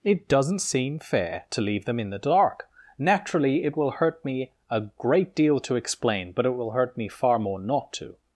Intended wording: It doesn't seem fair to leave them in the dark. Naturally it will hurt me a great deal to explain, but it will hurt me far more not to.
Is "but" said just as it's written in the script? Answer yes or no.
yes